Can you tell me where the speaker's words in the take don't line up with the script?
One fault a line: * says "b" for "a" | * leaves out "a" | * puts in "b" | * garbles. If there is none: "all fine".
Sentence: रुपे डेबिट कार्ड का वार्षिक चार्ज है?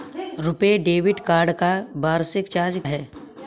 all fine